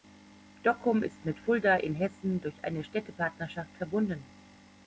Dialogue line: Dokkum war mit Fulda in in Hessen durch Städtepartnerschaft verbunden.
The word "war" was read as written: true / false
false